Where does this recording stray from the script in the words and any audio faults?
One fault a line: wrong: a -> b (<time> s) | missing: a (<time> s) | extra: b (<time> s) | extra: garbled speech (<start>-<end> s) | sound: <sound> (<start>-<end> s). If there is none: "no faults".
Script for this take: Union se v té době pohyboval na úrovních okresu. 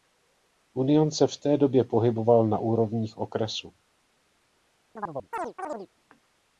sound: chirp (5.0-5.9 s)